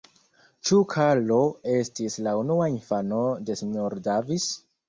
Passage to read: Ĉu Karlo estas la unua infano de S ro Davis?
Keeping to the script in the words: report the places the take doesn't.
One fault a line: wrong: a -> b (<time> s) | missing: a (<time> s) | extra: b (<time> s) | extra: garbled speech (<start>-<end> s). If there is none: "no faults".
wrong: estas -> estis (1.8 s)